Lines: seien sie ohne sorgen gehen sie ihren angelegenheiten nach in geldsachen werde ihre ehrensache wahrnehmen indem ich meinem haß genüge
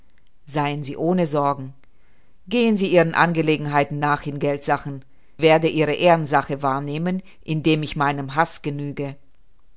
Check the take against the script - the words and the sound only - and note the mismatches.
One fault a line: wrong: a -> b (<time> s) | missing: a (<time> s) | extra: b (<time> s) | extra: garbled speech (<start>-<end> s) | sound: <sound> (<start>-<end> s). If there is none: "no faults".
no faults